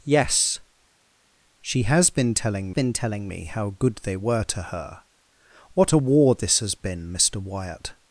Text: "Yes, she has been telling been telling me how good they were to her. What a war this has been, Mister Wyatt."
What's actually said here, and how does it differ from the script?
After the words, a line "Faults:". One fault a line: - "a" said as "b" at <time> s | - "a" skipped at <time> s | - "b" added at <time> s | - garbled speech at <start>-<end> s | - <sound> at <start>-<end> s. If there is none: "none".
"Yes, she has been telling been telling me how good they were to her. What a war this has been, Mister Wyatt."
Faults:
none